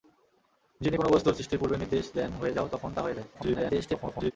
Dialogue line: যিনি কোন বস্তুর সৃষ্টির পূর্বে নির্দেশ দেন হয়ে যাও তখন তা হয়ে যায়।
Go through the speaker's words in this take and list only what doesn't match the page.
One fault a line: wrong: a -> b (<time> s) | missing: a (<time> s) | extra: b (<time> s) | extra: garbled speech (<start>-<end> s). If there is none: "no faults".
extra: garbled speech (3.3-4.3 s)